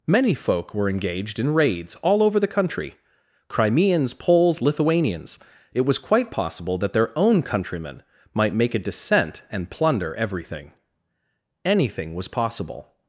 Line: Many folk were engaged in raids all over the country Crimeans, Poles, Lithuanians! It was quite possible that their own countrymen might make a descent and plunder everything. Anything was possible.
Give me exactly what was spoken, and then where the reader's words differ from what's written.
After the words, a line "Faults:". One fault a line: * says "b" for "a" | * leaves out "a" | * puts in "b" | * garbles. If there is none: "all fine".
Many folk were engaged in raids all over the country Crimeans, Poles, Lithuanians! It was quite possible that their own countrymen might make a descent and plunder everything. Anything was possible.
Faults:
all fine